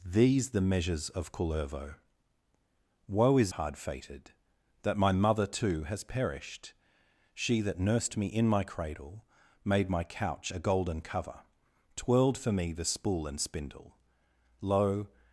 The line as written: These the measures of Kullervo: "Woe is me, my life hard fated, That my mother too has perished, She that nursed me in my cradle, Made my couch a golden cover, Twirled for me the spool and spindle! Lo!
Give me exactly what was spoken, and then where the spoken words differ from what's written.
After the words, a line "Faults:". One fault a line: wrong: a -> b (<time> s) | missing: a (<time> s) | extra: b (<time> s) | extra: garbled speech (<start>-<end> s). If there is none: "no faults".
These the measures of Kullervo: "Woe is hard fated, That my mother too has perished, She that nursed me in my cradle, Made my couch a golden cover, Twirled for me the spool and spindle! Lo!
Faults:
missing: me my life (3.5 s)